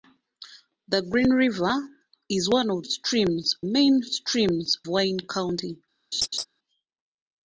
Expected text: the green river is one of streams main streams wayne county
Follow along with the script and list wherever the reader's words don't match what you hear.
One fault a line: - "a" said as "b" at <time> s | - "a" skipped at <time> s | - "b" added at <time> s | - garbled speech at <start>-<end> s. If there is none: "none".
none